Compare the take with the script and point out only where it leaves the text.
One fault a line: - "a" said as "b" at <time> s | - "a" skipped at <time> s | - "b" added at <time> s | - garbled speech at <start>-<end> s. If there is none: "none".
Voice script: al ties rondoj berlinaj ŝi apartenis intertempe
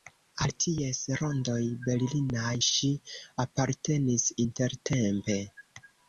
none